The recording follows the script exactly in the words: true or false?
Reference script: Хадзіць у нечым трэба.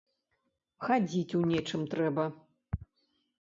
true